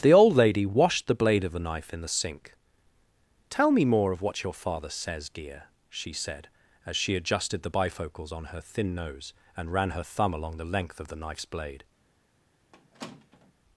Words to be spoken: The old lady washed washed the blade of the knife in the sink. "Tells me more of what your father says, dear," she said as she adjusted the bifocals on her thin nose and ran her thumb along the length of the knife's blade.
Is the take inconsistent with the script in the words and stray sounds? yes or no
yes